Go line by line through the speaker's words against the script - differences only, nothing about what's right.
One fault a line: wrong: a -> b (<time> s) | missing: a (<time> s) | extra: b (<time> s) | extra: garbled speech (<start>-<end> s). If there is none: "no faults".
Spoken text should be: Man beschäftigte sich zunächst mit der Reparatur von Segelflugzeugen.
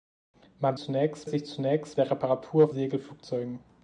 wrong: beschäftigte -> zunächst (0.8 s)
missing: mit (2.0 s)
missing: von (2.7 s)